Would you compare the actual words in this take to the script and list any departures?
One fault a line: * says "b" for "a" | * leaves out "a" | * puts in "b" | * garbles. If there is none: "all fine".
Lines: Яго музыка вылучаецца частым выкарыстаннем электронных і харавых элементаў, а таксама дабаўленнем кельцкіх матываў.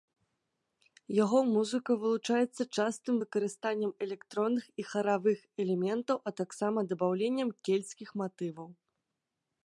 all fine